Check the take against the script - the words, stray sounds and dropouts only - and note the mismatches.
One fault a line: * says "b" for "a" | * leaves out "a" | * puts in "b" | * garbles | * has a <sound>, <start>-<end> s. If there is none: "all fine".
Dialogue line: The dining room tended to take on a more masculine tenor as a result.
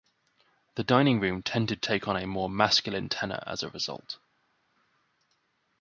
* leaves out "to"